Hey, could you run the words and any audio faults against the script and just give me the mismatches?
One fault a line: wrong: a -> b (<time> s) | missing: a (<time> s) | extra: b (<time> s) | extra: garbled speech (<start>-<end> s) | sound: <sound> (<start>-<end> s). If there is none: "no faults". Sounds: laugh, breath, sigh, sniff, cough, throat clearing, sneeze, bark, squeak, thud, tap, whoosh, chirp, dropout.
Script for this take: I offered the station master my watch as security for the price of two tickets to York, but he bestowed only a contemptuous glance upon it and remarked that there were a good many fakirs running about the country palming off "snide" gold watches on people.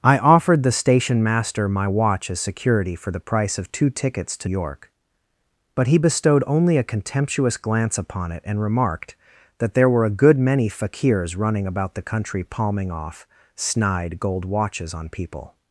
no faults